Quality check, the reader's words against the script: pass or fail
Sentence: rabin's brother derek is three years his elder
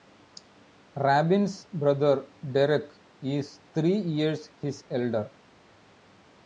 pass